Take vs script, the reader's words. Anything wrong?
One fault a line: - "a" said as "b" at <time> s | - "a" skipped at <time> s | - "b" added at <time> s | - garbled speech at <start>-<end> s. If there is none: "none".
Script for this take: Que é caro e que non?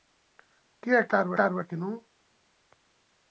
- "caro" added at 1.4 s